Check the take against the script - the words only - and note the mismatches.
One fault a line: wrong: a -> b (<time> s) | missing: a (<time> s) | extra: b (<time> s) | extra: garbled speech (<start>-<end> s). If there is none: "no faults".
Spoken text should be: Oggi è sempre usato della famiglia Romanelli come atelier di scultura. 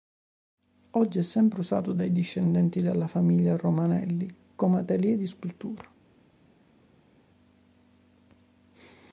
extra: dai discendenti (1.9 s)